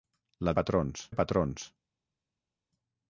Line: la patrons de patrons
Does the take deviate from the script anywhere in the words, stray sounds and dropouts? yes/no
no